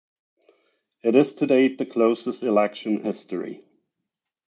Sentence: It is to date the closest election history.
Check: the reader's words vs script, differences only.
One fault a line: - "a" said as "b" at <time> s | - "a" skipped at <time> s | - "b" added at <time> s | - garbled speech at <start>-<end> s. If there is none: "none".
none